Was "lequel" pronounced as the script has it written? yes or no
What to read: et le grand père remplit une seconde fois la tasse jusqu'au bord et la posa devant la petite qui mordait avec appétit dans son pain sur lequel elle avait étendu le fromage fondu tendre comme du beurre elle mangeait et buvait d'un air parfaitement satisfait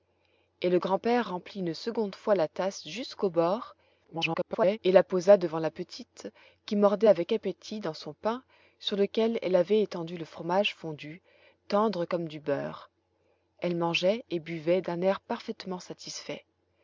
yes